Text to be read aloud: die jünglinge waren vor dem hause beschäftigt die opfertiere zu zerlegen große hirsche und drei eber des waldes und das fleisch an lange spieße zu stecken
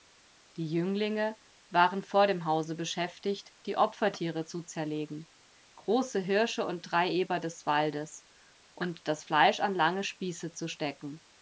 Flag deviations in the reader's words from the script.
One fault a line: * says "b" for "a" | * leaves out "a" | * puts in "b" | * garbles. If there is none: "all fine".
all fine